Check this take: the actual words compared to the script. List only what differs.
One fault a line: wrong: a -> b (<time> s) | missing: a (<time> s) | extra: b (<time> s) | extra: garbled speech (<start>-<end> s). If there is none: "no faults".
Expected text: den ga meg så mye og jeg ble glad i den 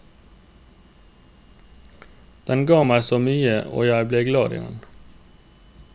no faults